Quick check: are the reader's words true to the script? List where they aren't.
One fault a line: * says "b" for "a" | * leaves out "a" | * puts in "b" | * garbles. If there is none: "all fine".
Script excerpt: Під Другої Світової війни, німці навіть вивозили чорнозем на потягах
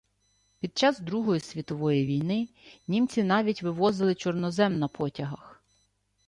* puts in "час"